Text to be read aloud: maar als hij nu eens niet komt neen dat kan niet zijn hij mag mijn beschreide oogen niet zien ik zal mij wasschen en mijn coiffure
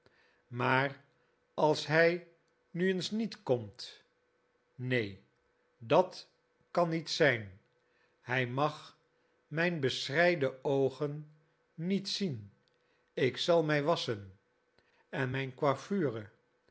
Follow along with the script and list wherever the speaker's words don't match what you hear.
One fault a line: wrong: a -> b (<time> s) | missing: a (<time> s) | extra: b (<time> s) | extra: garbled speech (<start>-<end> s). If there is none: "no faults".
no faults